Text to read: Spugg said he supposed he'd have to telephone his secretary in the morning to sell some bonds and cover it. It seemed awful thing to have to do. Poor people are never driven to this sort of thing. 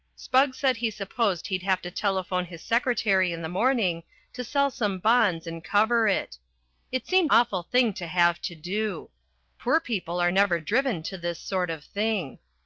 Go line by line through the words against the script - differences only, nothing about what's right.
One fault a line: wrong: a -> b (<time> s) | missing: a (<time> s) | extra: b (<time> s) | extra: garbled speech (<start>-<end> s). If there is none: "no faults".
no faults